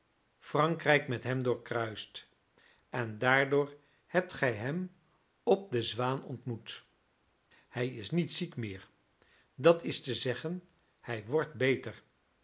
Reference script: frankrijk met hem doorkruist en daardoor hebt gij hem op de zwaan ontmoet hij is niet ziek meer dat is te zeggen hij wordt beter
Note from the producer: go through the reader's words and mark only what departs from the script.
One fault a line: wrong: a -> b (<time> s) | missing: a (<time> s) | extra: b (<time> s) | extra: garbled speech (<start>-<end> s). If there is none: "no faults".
no faults